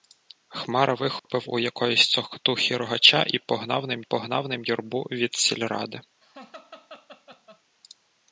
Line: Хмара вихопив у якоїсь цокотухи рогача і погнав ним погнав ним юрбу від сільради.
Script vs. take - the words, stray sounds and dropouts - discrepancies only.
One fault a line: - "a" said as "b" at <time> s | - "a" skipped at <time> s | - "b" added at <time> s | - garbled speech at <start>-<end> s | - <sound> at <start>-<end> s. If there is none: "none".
- dropout at 1.2-1.2 s
- laugh at 6.2-7.6 s